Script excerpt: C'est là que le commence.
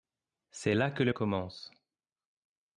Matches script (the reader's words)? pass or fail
pass